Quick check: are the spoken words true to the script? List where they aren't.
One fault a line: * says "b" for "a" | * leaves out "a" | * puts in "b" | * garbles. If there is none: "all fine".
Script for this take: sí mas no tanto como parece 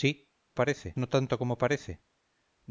* says "parece" for "mas"